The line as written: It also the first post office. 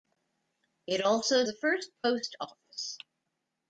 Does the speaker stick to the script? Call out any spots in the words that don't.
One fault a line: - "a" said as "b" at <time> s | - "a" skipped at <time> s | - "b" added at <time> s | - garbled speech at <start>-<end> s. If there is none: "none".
none